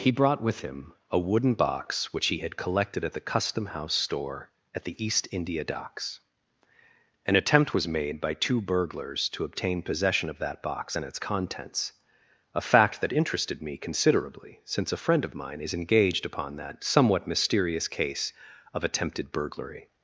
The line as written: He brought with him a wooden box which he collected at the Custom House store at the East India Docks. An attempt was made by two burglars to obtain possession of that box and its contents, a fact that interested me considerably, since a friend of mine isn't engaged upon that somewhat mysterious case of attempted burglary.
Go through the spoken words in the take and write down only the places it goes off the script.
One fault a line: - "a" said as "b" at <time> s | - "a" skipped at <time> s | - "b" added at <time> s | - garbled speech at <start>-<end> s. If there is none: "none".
- "had" added at 2.4 s
- "isn't" said as "is" at 15.6 s